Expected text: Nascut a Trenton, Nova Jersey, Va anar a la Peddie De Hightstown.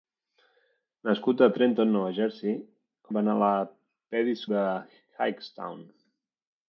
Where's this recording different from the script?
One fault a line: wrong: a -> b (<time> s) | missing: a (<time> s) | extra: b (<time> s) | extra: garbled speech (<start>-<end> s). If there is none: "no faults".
no faults